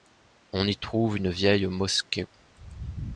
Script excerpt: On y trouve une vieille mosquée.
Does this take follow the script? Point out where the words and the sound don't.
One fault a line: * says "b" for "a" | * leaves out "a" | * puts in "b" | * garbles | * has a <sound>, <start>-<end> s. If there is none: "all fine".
all fine